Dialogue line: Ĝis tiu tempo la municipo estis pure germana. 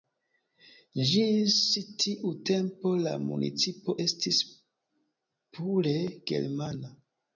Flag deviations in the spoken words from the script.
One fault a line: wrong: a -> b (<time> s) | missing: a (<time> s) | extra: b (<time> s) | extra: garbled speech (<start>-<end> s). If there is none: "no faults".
no faults